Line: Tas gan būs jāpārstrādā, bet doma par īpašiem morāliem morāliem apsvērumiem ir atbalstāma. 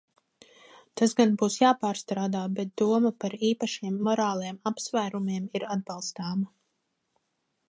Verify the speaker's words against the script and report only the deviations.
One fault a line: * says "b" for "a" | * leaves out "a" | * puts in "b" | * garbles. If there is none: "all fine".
* leaves out "morāliem"